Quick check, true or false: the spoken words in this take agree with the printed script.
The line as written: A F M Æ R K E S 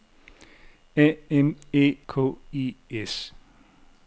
false